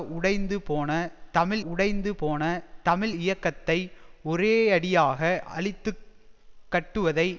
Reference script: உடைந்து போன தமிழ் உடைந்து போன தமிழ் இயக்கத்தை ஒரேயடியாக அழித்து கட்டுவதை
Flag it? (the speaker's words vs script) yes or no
no